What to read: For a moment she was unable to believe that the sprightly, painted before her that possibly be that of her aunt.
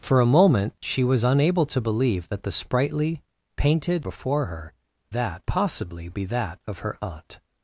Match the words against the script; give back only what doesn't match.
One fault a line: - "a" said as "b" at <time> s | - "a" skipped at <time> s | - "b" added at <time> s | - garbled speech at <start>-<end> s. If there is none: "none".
none